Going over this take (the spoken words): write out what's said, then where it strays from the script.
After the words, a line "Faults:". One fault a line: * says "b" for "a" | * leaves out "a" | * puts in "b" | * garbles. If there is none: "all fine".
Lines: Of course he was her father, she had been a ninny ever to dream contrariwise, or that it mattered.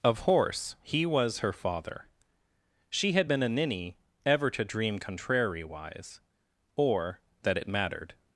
Of horse he was her father, she had been a ninny ever to dream contrariwise, or that it mattered.
Faults:
* says "horse" for "course"